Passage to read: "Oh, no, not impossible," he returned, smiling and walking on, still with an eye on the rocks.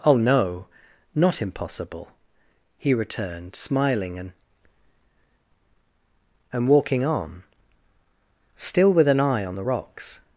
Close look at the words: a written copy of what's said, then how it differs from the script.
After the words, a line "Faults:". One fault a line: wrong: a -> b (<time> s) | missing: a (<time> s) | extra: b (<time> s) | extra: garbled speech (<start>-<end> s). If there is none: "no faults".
"Oh, no, not impossible," he returned, smiling and and walking on, still with an eye on the rocks.
Faults:
extra: and (6.5 s)